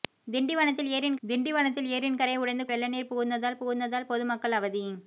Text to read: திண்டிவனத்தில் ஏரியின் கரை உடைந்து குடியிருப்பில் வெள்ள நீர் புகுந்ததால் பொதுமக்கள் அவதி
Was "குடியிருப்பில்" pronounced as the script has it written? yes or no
no